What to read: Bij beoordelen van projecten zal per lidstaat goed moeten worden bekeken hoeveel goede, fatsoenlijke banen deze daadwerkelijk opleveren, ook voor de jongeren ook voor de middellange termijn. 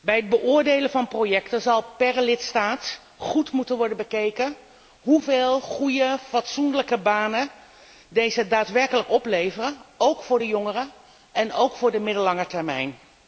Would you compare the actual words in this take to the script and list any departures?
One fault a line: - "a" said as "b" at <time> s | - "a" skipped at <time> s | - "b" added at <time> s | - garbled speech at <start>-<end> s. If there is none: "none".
- "het" added at 0.1 s
- "en" added at 11.3 s